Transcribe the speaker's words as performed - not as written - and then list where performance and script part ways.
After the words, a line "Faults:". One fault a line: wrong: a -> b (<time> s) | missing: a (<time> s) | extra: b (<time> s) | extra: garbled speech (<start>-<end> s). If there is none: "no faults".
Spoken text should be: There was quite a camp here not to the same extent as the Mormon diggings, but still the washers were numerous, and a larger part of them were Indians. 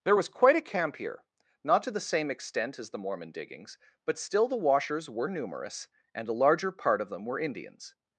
There was quite a camp here not to the same extent as the Mormon diggings, but still the washers were numerous, and a larger part of them were Indians.
Faults:
no faults